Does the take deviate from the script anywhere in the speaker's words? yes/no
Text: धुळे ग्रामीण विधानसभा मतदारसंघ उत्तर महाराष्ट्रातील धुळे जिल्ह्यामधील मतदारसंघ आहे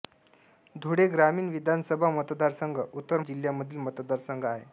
yes